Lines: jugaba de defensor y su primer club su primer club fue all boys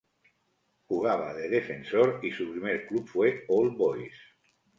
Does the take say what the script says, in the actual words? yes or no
no